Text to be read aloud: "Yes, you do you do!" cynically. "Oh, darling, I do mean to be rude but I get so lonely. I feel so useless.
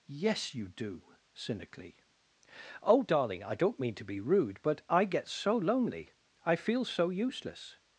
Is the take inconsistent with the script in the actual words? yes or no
yes